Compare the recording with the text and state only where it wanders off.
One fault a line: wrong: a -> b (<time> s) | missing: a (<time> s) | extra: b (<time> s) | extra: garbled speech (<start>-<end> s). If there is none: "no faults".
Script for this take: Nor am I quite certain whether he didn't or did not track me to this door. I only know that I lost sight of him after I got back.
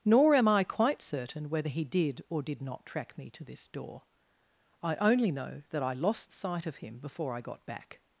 wrong: didn't -> did (1.8 s)
wrong: after -> before (7.0 s)